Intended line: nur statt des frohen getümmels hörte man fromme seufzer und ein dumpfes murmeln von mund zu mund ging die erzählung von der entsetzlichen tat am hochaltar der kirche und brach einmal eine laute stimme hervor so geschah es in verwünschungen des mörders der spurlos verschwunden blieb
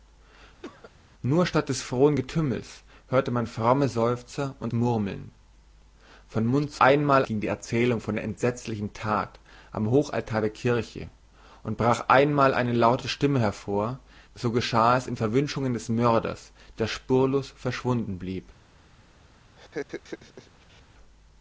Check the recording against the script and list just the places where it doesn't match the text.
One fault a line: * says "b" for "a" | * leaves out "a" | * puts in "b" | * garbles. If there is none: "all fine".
* leaves out "ein dumpfes"
* says "einmal" for "mund"